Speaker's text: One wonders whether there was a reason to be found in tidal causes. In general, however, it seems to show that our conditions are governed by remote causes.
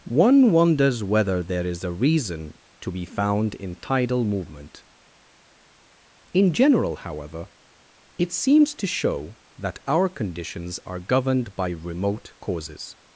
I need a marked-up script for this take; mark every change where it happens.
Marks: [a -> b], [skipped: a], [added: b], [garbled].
One wonders whether there [was -> is] a reason to be found in tidal [causes. -> movement] In general, however, it seems to show that our conditions are governed by remote causes.